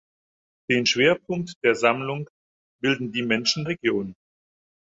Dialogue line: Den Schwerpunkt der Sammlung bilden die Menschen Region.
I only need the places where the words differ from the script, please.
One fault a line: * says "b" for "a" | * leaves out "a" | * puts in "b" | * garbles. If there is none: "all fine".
all fine